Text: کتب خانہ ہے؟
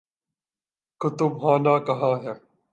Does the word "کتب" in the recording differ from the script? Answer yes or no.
no